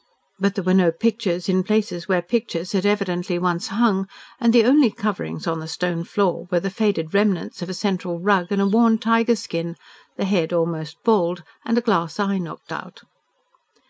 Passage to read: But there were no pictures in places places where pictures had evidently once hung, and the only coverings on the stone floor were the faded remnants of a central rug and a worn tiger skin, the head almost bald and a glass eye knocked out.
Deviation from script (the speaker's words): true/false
true